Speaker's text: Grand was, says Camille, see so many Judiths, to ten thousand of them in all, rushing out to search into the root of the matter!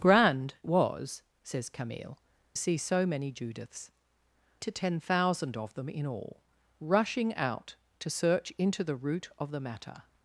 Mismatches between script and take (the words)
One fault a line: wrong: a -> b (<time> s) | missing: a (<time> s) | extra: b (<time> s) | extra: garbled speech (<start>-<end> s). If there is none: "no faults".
no faults